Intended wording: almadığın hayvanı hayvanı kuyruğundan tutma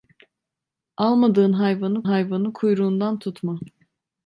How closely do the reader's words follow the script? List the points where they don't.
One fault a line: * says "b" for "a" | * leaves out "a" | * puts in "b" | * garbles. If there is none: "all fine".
all fine